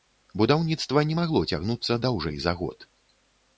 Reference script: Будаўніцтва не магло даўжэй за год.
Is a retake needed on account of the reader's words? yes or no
yes